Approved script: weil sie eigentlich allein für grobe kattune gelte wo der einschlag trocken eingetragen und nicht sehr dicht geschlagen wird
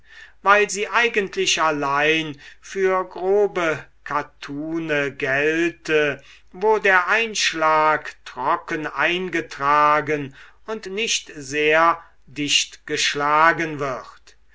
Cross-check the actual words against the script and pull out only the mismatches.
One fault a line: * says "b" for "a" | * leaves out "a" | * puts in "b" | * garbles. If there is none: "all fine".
all fine